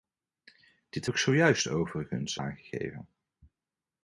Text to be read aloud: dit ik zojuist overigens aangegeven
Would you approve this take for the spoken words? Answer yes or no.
yes